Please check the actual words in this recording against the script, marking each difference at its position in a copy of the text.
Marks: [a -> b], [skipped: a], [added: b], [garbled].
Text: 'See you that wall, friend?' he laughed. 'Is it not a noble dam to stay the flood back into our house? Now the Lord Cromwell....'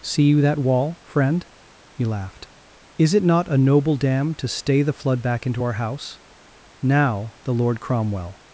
'See you that wall, friend?' he laughed. 'Is it not a noble dam to stay the flood back into our house? Now the Lord Cromwell....'